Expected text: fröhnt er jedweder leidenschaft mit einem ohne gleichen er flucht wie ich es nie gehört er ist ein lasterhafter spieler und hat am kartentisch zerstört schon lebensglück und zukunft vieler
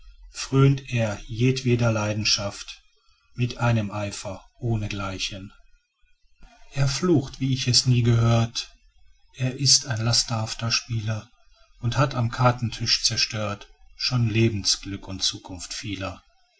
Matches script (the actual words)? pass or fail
fail